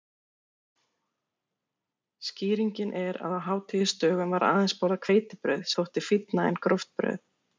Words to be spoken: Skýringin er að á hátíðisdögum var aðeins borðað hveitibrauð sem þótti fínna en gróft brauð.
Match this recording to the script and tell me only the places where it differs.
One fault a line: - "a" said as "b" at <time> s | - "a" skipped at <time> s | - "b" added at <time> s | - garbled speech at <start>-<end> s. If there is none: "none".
- "sem" skipped at 5.7 s